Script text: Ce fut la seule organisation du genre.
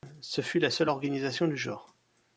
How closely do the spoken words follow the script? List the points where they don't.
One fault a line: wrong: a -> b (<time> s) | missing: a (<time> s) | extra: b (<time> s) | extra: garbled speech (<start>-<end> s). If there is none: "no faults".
no faults